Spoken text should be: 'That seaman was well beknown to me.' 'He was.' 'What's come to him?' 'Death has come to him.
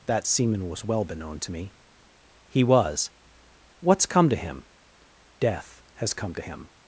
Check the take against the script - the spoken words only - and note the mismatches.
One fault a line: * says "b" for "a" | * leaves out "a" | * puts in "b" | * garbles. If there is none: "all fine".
all fine